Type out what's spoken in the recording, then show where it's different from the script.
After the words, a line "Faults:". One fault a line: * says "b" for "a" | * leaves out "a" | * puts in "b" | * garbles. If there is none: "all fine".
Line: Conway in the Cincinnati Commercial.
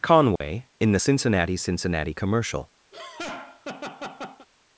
Conway in the Cincinnati Cincinnati Commercial.
Faults:
* puts in "Cincinnati"